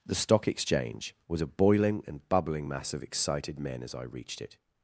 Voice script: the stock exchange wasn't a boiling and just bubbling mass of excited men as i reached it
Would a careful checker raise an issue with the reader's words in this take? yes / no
yes